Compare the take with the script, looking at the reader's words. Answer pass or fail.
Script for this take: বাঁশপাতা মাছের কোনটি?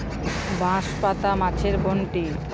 pass